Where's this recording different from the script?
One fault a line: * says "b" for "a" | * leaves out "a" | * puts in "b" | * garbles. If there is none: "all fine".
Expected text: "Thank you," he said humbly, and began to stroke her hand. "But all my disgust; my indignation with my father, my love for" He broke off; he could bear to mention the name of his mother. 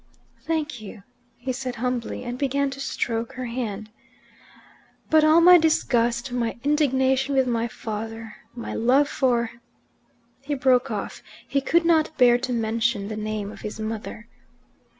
* puts in "not"